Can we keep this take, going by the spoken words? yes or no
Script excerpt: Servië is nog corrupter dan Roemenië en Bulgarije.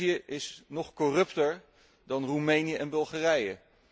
yes